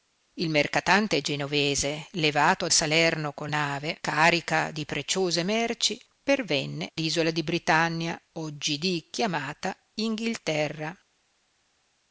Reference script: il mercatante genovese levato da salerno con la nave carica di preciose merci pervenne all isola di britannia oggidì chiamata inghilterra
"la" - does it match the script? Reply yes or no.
no